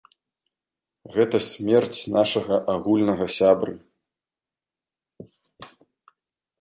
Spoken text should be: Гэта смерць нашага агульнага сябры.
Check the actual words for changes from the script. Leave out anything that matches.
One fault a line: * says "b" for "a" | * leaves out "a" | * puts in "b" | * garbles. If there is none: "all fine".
all fine